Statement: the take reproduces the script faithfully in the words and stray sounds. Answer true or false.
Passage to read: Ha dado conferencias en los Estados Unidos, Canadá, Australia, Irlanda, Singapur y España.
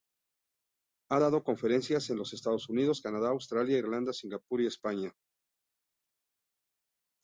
true